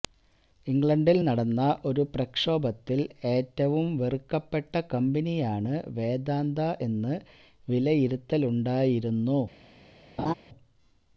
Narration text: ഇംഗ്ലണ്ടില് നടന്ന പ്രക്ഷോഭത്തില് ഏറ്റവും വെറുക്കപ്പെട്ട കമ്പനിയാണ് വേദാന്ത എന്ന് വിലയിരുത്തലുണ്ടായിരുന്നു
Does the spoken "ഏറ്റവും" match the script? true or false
true